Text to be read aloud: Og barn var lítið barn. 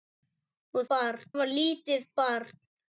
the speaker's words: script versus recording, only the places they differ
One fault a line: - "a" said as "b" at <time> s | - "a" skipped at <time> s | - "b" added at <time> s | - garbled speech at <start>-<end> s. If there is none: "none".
none